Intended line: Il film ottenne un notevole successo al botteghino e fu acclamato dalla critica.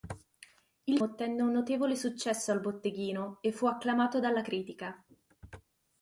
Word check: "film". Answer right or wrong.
wrong